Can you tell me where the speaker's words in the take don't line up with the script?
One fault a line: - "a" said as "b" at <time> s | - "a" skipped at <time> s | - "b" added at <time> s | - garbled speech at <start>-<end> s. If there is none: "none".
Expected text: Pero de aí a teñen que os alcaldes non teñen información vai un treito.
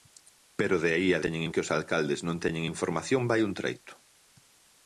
none